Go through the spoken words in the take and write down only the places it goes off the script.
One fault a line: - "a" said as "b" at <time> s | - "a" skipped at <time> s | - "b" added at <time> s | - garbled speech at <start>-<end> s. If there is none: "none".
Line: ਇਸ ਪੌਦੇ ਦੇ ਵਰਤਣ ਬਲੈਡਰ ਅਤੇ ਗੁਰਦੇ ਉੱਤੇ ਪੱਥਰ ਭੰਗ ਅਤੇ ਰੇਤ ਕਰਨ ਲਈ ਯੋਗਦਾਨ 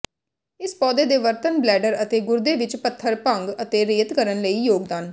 - "ਉੱਤੇ" said as "ਵਿੱਚ" at 2.5 s